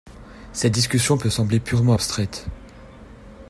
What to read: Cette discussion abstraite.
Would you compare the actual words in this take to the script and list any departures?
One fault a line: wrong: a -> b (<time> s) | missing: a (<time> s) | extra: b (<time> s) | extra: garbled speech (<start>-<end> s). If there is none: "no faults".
extra: peut sembler purement (1.2 s)